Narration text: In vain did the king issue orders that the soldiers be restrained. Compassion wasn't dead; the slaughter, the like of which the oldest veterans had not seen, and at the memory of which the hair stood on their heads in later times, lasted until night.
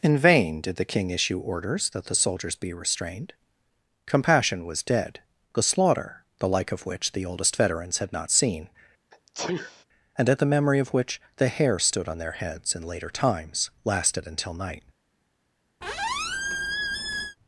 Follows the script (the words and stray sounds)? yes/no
no